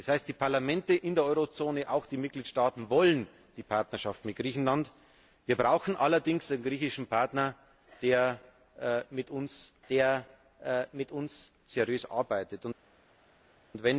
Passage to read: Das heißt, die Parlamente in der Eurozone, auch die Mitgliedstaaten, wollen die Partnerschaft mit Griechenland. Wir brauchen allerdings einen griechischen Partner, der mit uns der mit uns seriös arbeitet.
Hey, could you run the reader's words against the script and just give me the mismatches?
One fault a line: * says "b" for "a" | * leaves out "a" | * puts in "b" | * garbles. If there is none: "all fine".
all fine